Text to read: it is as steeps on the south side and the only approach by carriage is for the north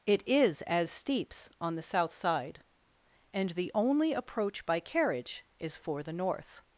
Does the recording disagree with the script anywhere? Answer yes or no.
no